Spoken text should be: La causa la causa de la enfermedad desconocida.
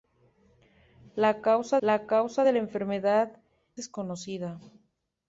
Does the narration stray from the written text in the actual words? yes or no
no